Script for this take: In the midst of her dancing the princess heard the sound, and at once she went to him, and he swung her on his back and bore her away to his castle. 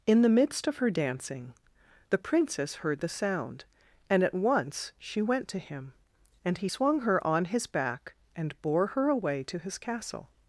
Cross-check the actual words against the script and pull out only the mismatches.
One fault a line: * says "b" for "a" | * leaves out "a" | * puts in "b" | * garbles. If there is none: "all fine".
all fine